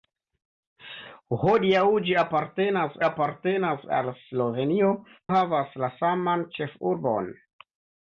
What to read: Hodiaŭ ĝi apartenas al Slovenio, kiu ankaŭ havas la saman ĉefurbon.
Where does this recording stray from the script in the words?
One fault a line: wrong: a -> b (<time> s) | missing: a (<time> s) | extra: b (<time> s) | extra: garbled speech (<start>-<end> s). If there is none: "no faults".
extra: apartenas (3.1 s)
missing: kiu ankaŭ (4.9 s)